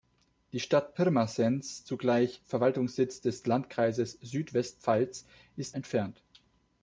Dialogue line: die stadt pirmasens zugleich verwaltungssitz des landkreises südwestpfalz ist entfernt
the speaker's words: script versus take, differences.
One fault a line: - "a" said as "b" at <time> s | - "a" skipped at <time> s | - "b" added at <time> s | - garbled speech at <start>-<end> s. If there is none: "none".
none